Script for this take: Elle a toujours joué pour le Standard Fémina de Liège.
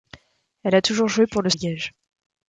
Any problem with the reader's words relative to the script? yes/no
yes